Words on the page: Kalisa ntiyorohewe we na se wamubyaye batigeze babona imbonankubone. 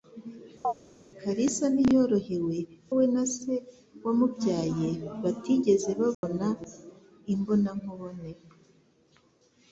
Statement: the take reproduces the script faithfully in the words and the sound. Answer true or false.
false